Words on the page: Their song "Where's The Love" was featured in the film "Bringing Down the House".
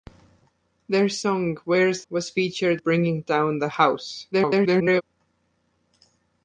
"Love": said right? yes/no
no